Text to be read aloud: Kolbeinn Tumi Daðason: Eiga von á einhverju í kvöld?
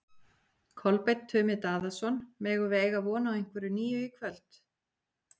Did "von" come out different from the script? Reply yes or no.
no